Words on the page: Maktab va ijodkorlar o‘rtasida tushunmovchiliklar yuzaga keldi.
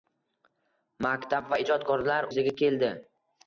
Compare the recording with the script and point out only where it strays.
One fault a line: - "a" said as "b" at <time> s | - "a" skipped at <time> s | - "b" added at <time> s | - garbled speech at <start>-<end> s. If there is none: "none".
- "o‘rtasida tushunmovchiliklar" skipped at 2.3 s